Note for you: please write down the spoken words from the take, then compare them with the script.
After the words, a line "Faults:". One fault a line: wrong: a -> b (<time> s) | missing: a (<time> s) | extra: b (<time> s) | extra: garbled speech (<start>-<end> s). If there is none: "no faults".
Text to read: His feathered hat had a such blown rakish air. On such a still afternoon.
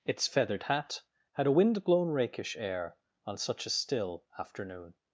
Its feathered hat had a wind blown rakish air. On such a still afternoon.
Faults:
wrong: His -> Its (0.1 s)
wrong: such -> wind (1.5 s)